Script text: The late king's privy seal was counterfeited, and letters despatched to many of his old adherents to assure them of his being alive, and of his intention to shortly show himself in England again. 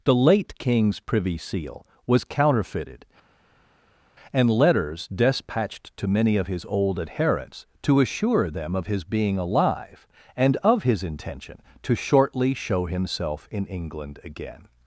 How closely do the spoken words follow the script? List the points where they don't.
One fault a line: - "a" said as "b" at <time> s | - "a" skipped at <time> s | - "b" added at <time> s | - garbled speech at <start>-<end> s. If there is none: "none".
none